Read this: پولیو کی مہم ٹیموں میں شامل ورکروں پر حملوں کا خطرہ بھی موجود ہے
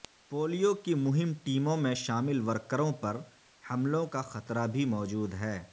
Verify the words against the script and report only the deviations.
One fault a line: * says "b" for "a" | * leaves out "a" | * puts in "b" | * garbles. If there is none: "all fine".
all fine